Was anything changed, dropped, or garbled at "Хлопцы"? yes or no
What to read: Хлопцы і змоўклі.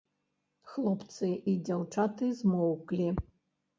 no